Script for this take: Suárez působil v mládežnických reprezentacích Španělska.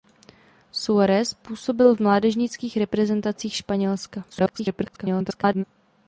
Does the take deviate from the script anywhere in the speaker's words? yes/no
yes